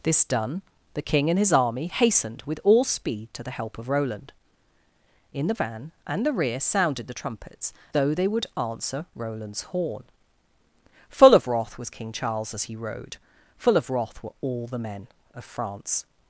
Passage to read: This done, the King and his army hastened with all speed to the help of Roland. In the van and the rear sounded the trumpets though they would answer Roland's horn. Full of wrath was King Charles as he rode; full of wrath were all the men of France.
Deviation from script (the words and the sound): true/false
false